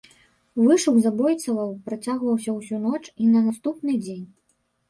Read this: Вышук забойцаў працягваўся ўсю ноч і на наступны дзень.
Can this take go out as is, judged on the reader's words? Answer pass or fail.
pass